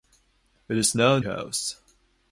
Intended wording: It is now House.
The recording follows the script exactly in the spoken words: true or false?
true